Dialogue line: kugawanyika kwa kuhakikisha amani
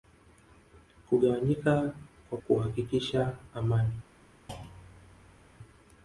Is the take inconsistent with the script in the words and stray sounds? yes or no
yes